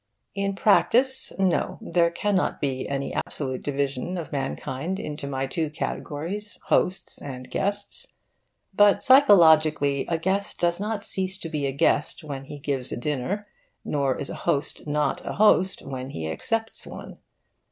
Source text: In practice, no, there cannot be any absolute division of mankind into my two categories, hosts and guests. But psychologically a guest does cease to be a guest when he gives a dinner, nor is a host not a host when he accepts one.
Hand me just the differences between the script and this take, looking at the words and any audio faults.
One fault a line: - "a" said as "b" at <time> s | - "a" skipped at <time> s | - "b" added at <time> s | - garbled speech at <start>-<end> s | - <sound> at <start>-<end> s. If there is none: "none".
- dropout at 3.2-3.3 s
- "not" added at 10.8 s